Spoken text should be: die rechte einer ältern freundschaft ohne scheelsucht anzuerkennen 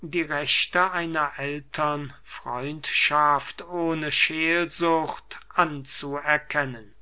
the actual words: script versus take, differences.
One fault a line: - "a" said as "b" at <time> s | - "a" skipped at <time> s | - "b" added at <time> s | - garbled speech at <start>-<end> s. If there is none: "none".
none